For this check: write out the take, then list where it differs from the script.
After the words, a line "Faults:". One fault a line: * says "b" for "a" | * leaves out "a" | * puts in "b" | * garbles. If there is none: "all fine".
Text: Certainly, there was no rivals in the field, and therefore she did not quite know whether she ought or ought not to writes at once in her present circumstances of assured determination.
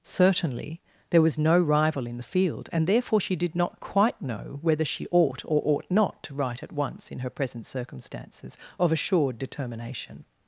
Certainly, there was no rival in the field, and therefore she did not quite know whether she ought or ought not to write at once in her present circumstances of assured determination.
Faults:
* says "rival" for "rivals"
* says "write" for "writes"